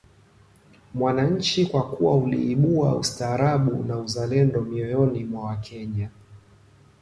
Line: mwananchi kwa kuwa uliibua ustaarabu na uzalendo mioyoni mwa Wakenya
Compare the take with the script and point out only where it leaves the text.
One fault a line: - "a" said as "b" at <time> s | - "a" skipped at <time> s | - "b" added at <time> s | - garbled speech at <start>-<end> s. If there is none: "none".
none